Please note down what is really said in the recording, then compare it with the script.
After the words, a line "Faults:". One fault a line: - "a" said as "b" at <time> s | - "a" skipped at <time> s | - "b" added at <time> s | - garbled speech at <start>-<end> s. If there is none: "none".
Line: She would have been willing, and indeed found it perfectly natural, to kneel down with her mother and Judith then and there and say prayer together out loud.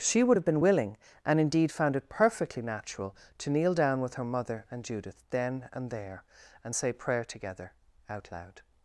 She would have been willing, and indeed found it perfectly natural, to kneel down with her mother and Judith then and there and say prayer together out loud.
Faults:
none